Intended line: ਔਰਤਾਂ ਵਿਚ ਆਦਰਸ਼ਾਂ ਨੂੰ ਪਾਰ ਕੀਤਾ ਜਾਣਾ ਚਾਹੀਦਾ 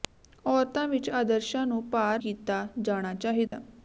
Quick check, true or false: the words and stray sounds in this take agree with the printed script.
false